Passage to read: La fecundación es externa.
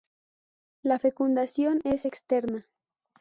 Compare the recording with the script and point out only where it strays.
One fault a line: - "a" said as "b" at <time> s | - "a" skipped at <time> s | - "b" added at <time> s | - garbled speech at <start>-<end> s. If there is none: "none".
none